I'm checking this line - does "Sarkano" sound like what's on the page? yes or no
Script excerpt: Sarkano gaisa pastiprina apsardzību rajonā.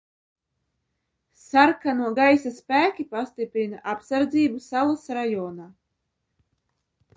yes